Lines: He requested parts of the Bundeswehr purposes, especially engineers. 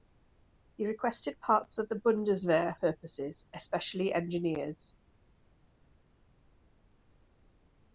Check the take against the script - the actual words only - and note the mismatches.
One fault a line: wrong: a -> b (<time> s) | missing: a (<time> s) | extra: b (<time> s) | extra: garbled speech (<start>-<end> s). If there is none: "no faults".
no faults